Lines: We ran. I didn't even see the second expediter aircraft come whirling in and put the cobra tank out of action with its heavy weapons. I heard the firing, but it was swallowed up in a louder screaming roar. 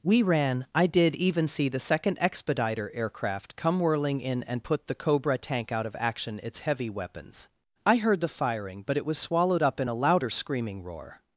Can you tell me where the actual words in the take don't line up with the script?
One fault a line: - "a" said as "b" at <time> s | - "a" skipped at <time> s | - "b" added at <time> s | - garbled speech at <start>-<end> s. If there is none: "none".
- "didn't" said as "did" at 0.9 s
- "with" skipped at 6.4 s